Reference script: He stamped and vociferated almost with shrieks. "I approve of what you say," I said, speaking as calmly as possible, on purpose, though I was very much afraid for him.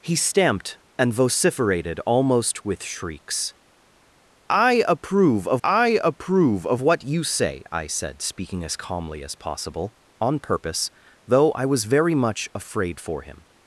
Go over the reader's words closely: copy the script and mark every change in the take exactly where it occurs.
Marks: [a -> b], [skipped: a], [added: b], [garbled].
He stamped and vociferated almost with shrieks. "I approve of [added: I approve of] what you say," I said, speaking as calmly as possible, on purpose, though I was very much afraid for him.